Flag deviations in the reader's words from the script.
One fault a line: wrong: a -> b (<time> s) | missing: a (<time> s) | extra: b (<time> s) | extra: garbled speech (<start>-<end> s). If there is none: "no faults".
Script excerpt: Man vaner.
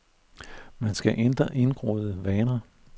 extra: skal ændre indgroede (0.9 s)